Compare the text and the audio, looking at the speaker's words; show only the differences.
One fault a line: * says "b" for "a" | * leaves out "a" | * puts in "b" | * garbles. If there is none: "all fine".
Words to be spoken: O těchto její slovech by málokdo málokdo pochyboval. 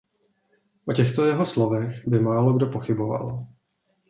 * says "jeho" for "její"
* leaves out "málokdo"